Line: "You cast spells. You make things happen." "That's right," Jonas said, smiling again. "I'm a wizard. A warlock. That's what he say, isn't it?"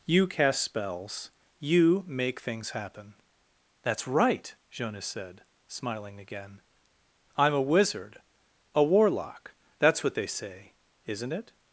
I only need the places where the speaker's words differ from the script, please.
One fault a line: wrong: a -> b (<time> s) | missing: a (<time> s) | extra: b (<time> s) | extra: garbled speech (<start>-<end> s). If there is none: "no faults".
wrong: he -> they (10.1 s)